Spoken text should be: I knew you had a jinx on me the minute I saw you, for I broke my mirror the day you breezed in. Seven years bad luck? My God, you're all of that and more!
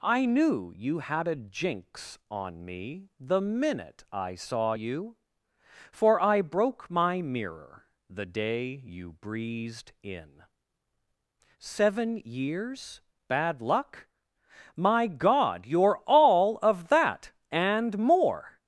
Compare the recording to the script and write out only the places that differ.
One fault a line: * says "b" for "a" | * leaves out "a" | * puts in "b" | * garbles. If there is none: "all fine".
all fine